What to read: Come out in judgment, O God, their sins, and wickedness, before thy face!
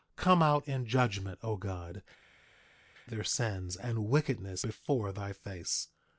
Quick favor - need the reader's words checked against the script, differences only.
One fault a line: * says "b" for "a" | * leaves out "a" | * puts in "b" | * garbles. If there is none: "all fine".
all fine